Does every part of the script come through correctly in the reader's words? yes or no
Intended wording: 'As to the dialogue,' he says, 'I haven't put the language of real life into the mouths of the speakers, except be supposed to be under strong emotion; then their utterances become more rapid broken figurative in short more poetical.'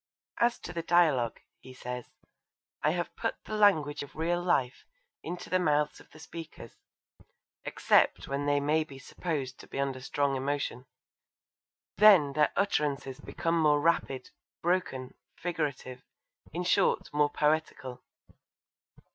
no